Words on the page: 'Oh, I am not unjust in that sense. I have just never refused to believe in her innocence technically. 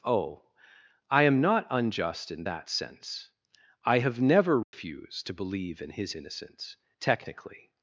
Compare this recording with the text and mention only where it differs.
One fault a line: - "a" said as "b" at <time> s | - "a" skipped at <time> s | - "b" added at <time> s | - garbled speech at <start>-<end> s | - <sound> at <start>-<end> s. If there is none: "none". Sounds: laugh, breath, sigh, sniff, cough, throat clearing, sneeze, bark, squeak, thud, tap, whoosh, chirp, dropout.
- "just" skipped at 4.2 s
- dropout at 4.6-4.7 s
- "her" said as "his" at 5.9 s